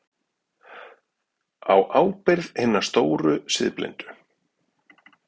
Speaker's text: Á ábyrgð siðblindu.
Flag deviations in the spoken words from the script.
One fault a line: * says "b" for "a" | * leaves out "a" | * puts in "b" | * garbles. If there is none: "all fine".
* puts in "hinna stóru"